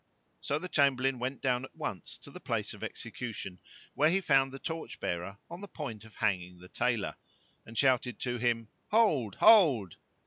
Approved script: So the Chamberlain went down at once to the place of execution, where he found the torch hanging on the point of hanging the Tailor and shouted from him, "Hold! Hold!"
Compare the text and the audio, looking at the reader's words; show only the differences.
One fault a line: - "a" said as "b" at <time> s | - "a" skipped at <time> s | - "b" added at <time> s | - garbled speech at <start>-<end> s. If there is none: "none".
- "hanging" said as "bearer" at 5.0 s
- "from" said as "to" at 8.2 s